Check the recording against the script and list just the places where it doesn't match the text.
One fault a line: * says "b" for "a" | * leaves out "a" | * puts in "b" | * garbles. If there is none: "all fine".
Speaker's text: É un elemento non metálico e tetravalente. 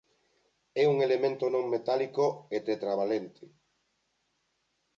all fine